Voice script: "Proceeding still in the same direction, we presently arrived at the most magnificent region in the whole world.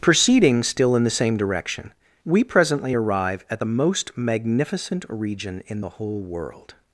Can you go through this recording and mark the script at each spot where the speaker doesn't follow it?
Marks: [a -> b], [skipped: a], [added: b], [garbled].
"Proceeding still in the same direction, we presently [arrived -> arrive] at the most magnificent region in the whole world.